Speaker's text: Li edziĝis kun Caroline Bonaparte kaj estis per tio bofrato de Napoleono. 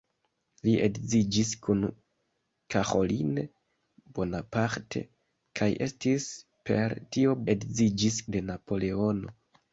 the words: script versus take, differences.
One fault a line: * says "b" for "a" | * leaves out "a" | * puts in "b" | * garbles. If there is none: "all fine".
* says "edziĝis" for "bofrato"